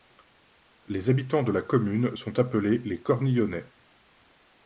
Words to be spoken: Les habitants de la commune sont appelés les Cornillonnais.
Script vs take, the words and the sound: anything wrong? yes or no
no